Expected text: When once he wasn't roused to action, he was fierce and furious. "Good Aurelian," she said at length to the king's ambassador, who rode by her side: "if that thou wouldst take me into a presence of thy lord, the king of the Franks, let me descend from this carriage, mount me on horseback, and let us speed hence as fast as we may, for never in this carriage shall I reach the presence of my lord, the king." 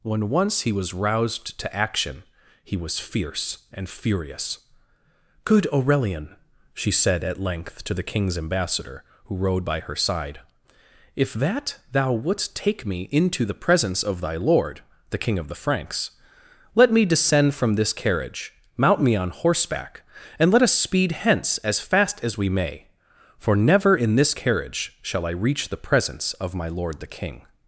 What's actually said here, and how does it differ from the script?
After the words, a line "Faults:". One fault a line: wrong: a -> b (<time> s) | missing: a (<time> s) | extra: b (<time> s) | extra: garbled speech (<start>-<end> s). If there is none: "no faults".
When once he was roused to action, he was fierce and furious. "Good Aurelian," she said at length to the king's ambassador, who rode by her side: "if that thou wouldst take me into the presence of thy lord, the king of the Franks, let me descend from this carriage, mount me on horseback, and let us speed hence as fast as we may, for never in this carriage shall I reach the presence of my lord, the king."
Faults:
wrong: wasn't -> was (0.7 s)
wrong: a -> the (13.4 s)